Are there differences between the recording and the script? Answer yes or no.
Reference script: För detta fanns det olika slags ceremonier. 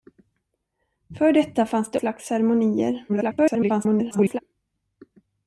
yes